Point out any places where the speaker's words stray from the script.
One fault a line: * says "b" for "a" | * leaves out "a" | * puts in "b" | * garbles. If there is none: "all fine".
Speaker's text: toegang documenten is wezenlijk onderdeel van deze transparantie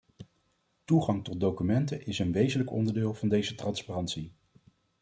* puts in "tot"
* puts in "een"